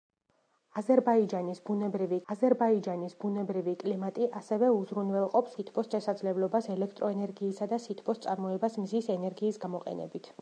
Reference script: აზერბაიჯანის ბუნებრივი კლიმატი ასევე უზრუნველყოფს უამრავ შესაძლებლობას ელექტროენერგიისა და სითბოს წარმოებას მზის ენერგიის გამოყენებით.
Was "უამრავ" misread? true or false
true